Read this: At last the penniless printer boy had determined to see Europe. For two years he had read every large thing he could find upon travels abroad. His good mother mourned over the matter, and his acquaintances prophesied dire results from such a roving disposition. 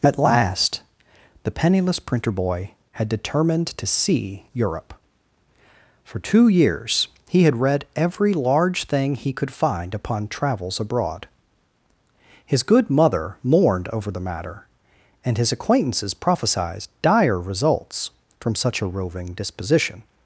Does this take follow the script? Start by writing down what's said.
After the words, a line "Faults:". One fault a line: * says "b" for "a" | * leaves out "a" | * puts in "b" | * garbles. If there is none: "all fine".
At last the penniless printer boy had determined to see Europe. For two years he had read every large thing he could find upon travels abroad. His good mother mourned over the matter, and his acquaintances prophesied dire results from such a roving disposition.
Faults:
all fine